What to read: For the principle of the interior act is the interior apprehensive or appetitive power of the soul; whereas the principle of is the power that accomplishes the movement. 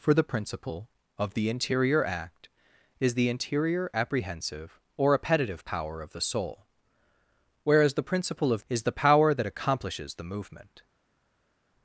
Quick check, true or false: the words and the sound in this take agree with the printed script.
true